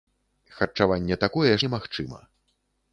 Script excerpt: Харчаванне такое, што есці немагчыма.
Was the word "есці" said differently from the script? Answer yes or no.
yes